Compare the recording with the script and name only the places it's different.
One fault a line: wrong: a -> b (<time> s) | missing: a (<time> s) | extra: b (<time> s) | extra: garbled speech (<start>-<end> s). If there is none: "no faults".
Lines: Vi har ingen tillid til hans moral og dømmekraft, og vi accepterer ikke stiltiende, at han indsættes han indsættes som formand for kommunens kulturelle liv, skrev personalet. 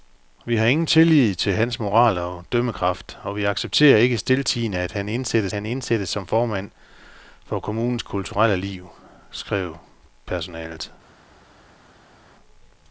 no faults